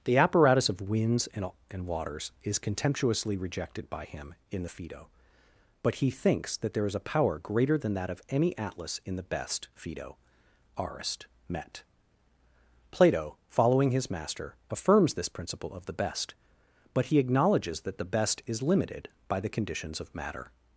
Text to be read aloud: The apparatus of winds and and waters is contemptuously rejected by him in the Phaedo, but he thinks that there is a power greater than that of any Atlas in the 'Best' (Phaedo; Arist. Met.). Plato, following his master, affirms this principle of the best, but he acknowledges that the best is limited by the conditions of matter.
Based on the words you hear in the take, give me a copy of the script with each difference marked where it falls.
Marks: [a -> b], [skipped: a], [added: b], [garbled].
The apparatus of winds and and waters is contemptuously rejected by him in the Phaedo, but he thinks that there is a power greater than that of any Atlas in the 'Best' (Phaedo; Arist. Met.). Plato, following his master, affirms this principle of the best, but he acknowledges that the best is limited by the conditions of matter.